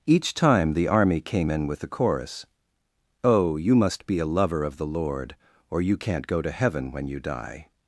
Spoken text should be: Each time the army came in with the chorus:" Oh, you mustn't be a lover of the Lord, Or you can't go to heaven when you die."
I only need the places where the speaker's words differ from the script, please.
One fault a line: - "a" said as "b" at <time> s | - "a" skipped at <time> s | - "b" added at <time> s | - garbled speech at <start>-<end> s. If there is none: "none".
- "mustn't" said as "must" at 3.7 s